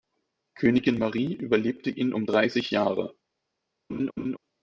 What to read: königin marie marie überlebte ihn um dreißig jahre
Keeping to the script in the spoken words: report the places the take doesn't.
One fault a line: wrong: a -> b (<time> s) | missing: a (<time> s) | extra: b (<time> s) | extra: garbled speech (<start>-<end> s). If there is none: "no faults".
missing: marie (1.3 s)